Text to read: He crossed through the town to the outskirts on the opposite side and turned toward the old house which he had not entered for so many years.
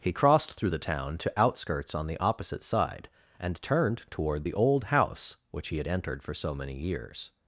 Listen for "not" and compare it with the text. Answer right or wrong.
wrong